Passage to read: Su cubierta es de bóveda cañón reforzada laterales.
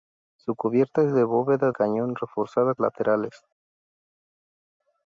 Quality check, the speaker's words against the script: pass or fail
pass